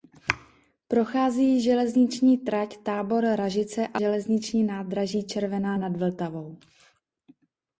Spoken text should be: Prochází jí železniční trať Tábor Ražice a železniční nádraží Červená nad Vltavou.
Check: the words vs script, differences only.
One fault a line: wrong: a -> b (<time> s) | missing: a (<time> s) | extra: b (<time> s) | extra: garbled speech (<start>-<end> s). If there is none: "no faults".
no faults